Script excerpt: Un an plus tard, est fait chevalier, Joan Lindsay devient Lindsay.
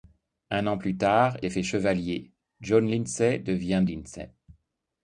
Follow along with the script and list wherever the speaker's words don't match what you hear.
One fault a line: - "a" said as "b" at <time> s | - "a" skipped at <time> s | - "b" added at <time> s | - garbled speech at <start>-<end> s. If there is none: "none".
none